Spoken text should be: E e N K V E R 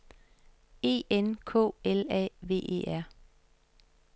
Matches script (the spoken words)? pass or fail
fail